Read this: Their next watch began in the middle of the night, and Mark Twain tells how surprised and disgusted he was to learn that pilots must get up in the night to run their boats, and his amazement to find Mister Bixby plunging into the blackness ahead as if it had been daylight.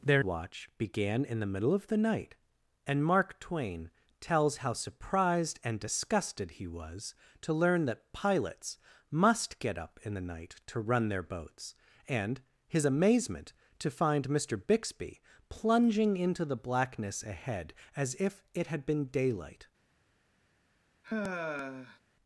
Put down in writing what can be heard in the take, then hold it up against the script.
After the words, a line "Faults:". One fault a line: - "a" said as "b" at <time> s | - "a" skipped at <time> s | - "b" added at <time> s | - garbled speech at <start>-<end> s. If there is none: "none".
Their watch began in the middle of the night, and Mark Twain tells how surprised and disgusted he was to learn that pilots must get up in the night to run their boats, and his amazement to find Mister Bixby plunging into the blackness ahead as if it had been daylight.
Faults:
- "next" skipped at 0.2 s